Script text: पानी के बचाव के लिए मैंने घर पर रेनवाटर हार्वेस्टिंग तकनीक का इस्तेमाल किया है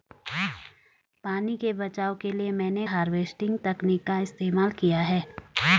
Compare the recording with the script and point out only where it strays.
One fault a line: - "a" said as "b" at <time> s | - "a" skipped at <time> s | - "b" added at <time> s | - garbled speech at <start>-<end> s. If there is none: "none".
- "घर पर रेनवाटर" skipped at 2.9 s